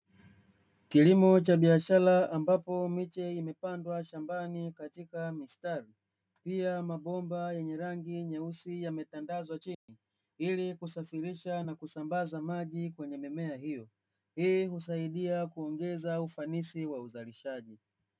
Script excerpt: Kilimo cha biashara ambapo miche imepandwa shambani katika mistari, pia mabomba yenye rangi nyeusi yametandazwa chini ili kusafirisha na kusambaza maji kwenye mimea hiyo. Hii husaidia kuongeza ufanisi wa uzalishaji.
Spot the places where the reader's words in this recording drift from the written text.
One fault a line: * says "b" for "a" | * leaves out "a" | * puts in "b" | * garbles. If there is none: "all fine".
all fine